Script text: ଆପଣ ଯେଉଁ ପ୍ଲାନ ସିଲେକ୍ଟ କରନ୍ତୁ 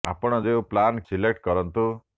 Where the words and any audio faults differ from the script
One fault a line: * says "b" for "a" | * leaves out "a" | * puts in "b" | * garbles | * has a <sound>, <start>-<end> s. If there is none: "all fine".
all fine